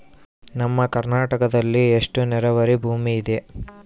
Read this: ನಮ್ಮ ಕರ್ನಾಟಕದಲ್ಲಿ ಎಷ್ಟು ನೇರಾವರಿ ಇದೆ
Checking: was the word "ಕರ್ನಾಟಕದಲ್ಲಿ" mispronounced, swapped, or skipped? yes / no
no